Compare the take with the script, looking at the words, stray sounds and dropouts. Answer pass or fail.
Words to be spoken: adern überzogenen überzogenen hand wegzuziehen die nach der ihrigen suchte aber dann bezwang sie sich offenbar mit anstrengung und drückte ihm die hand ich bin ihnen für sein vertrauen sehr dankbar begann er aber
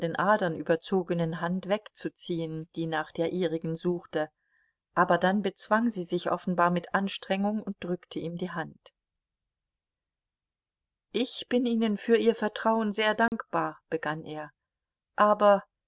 fail